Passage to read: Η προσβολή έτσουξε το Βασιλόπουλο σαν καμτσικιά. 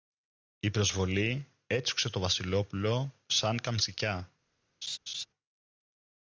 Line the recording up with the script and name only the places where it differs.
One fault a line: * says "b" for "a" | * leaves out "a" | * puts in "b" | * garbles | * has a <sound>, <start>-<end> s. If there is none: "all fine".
* has a laugh, 4.8-5.3 s